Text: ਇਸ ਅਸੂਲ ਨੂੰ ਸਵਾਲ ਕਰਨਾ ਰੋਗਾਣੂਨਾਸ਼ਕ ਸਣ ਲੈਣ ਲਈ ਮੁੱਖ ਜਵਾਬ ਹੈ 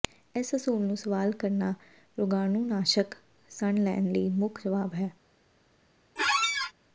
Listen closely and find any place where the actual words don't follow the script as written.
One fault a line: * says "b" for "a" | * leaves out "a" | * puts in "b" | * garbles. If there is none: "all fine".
all fine